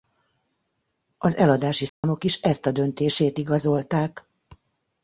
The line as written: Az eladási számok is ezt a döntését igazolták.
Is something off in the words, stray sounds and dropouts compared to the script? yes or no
yes